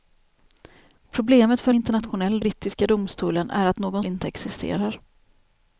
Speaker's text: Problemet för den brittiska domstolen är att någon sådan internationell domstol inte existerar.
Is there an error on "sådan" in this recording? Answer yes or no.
yes